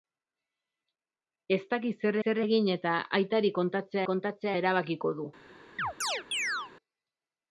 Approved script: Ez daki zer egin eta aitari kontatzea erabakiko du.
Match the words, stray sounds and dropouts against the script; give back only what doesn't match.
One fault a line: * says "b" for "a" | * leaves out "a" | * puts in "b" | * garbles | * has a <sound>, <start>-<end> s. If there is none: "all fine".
* puts in "zer"
* puts in "kontatzea"
* has a chirp, 5.8-6.7 s